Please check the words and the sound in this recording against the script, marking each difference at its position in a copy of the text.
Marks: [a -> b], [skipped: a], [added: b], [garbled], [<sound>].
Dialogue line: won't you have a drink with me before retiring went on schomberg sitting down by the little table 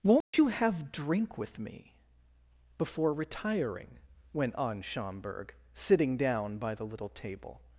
won't [dropout] you have [skipped: a] drink with me before retiring went on schomberg sitting down by the little table